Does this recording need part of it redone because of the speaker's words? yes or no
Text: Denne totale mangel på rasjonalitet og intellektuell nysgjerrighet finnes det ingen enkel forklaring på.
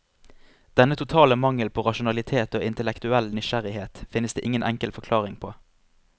no